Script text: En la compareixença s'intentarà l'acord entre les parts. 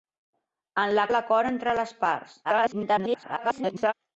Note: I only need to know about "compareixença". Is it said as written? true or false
false